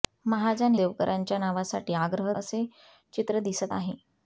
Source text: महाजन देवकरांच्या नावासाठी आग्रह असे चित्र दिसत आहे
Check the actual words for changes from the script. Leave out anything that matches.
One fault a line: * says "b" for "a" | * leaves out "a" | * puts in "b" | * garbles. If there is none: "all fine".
all fine